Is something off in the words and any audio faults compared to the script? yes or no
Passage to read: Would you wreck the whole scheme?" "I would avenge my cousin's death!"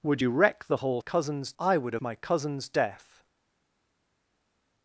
yes